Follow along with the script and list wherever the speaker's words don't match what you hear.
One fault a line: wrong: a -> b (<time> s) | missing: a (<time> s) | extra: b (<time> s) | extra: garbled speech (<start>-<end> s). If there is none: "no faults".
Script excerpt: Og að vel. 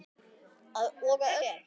no faults